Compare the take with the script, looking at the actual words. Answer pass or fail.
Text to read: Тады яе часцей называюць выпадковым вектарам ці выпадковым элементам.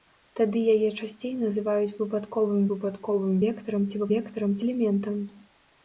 fail